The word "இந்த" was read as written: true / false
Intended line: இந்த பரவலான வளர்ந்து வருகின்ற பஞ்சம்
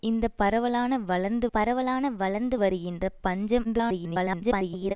true